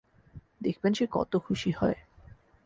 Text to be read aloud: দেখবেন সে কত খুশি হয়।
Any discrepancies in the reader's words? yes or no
no